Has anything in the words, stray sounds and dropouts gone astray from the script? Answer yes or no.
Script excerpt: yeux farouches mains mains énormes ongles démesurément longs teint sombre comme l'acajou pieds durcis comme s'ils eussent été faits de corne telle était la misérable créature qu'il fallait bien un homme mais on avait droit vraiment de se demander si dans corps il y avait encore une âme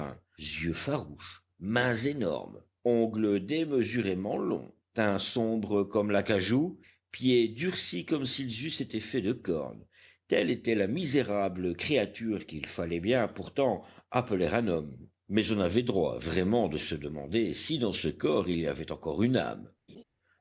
yes